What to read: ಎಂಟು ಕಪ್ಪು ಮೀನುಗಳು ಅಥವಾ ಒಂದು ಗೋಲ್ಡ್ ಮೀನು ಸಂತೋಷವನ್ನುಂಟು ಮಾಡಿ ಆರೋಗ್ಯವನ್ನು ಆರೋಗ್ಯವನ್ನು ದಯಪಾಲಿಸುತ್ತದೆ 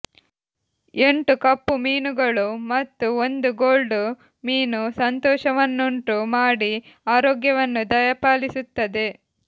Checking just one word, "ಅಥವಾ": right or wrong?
wrong